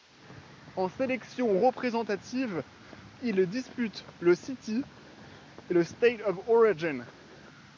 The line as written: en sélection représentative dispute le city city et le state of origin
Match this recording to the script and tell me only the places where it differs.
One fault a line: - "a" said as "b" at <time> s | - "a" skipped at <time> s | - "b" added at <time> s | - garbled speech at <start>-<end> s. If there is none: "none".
- "il" added at 3.2 s
- "city" skipped at 4.8 s